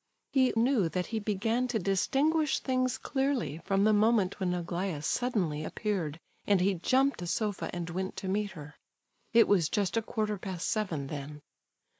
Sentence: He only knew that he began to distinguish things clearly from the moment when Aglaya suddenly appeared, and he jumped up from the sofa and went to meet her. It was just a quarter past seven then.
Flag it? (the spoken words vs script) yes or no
yes